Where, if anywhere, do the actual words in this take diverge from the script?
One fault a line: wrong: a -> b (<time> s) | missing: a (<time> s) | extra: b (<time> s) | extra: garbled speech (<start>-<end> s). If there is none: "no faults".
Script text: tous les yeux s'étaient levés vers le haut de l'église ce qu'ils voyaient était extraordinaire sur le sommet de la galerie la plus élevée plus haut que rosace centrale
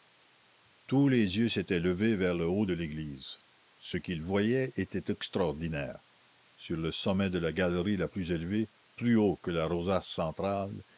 extra: la (9.5 s)